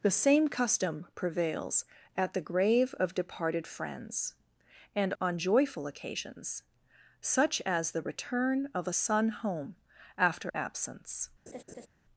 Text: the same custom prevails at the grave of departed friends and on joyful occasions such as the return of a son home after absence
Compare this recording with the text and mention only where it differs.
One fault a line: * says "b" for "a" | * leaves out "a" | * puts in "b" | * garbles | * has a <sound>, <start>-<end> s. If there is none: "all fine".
* has a laugh, 11.5-11.9 s